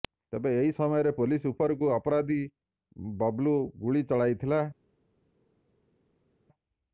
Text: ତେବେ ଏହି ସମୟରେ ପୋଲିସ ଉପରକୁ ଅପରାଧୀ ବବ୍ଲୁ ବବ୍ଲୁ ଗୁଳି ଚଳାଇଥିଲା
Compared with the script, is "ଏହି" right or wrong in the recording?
right